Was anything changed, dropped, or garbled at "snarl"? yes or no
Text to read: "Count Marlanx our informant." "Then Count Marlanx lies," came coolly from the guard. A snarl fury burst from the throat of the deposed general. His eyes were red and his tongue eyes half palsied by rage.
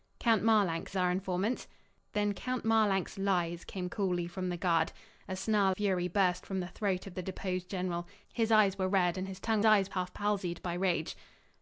no